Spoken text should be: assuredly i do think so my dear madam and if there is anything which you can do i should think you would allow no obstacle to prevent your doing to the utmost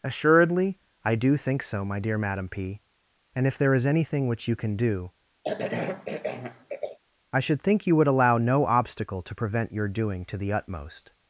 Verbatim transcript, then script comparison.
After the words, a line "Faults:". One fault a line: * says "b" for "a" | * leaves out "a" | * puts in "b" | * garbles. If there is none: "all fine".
assuredly i do think so my dear madam p and if there is anything which you can do i should think you would allow no obstacle to prevent your doing to the utmost
Faults:
* puts in "p"